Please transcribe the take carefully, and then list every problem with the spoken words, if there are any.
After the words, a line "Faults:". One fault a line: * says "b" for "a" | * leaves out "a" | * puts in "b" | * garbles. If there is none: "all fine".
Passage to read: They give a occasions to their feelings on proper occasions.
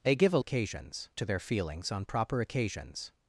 They give a occasions to their feelings on proper occasions.
Faults:
all fine